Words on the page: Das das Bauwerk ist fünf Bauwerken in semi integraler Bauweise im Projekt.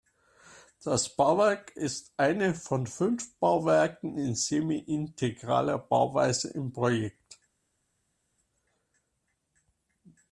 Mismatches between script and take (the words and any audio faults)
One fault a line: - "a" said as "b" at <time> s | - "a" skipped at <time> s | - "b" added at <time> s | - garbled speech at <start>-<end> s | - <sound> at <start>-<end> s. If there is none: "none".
- "das" skipped at 1.1 s
- "eine von" added at 2.2 s